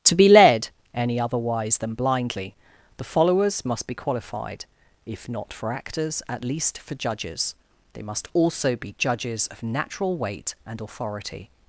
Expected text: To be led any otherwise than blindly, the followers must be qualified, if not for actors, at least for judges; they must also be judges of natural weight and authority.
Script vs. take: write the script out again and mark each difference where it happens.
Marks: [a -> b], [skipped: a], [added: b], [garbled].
To be led any otherwise than blindly, the followers must be qualified, if not for actors, at least for judges; they must also be judges of natural weight and authority.